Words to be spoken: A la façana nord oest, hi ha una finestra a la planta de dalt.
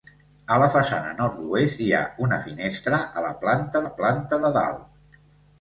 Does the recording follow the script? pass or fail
fail